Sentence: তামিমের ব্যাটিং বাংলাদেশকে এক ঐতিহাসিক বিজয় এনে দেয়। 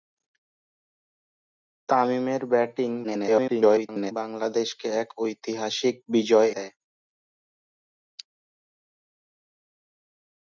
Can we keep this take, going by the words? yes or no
no